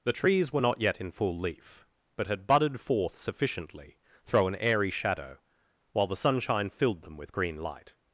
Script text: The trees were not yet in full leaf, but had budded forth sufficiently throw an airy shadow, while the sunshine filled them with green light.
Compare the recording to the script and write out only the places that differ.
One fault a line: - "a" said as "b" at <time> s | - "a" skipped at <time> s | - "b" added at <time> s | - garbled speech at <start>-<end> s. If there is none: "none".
none